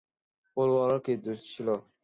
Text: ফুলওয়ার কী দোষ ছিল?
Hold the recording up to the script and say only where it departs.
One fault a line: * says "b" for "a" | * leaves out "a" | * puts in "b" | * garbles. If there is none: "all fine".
all fine